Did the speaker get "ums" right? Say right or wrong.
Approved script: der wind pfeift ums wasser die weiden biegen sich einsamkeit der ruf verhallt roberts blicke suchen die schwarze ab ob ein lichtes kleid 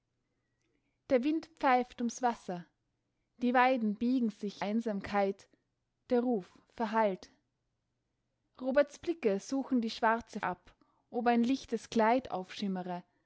right